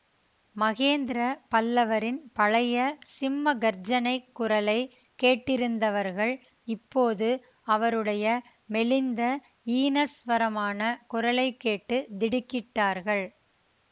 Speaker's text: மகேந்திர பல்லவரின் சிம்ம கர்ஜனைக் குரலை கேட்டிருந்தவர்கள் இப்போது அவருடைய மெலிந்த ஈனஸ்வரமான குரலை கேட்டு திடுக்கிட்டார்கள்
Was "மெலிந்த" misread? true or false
false